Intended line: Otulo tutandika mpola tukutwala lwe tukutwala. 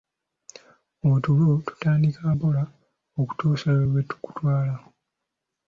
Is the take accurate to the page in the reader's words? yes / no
no